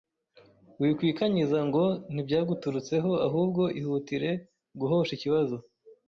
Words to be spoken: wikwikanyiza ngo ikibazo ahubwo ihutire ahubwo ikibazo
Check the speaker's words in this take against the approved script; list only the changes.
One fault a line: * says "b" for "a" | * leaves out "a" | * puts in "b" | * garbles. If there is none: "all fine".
* says "ntibyaguturutseho" for "ikibazo"
* says "guhosha" for "ahubwo"